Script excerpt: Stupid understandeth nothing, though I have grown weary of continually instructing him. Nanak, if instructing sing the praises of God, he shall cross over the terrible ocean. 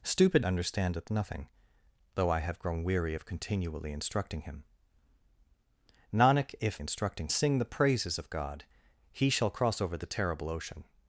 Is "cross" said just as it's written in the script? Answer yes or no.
yes